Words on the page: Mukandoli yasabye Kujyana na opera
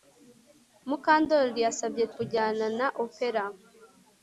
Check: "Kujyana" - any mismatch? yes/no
no